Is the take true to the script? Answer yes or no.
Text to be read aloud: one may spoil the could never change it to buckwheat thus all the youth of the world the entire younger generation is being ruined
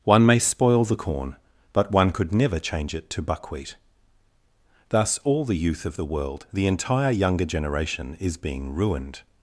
no